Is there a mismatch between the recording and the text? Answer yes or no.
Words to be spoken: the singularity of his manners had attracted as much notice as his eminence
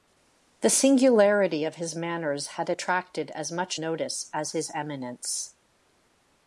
no